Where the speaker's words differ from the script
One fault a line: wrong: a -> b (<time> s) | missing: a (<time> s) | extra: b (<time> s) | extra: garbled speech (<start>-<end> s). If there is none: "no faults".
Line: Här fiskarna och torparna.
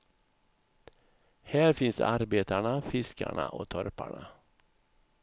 extra: finns arbetarna (1.7 s)